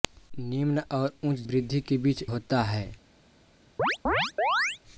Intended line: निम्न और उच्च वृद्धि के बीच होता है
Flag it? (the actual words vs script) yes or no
no